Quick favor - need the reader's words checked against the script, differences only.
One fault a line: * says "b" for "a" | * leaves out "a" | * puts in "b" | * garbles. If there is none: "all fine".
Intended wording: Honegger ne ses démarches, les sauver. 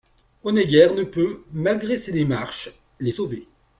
* puts in "peut malgré"